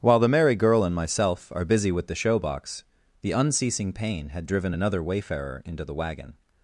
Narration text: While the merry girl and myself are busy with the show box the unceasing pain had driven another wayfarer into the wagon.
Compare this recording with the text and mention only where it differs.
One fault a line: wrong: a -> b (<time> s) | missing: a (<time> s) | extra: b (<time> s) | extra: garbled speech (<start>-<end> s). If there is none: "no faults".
no faults